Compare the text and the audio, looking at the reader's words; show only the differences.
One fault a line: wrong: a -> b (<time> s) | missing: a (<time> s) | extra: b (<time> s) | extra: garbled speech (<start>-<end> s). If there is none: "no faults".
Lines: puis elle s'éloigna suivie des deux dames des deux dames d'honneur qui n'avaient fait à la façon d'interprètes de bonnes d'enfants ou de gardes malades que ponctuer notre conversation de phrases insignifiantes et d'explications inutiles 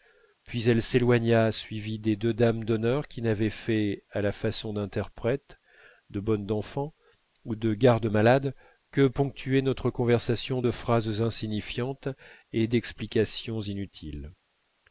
missing: des deux dames (2.6 s)